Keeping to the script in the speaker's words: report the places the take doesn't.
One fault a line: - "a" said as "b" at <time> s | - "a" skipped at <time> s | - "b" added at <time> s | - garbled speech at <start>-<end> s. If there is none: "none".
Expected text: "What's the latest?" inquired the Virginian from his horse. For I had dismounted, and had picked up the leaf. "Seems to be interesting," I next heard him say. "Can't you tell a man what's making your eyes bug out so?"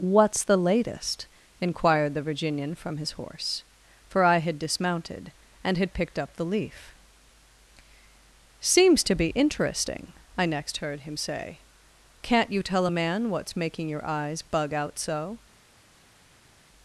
none